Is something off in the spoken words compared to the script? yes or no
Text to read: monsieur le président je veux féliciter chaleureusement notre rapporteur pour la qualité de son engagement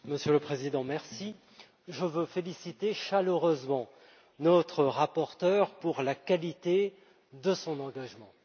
no